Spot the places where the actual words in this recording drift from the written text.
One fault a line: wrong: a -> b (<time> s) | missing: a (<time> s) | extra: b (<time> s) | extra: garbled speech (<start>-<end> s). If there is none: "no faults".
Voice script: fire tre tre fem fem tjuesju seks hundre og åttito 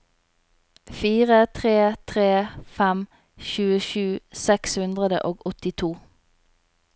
missing: fem (3.0 s)